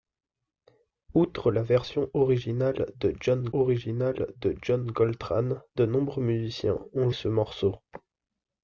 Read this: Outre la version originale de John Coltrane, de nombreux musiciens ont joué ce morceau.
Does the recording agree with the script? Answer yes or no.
no